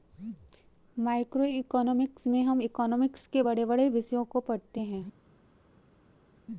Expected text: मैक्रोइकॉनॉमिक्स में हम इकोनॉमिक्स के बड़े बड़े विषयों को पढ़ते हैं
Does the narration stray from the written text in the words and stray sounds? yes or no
no